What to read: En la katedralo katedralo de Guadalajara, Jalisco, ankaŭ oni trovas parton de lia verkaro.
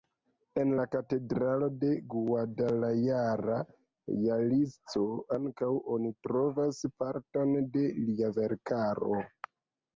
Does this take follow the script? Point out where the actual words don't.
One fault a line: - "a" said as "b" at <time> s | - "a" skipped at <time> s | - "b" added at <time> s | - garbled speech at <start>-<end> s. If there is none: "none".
- "katedralo" skipped at 1.7 s